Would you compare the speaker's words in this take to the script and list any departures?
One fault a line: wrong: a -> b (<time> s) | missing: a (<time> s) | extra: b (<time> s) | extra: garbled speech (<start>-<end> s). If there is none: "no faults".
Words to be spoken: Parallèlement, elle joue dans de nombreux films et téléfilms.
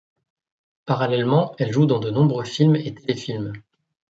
no faults